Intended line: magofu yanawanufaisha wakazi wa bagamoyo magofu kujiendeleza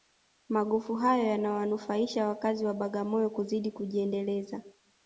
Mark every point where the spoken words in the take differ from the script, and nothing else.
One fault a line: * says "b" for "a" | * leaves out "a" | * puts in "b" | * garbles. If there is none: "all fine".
* puts in "hayo"
* says "kuzidi" for "magofu"